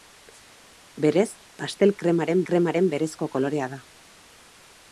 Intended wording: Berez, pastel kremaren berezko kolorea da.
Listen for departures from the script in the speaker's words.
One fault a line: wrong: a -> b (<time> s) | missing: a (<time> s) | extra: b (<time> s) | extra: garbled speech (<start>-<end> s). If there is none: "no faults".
extra: kremaren (2.5 s)